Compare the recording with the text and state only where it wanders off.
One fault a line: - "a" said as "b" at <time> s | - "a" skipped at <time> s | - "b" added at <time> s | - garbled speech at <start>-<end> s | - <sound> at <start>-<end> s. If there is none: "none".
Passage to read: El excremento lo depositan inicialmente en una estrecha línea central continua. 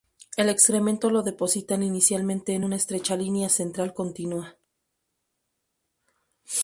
none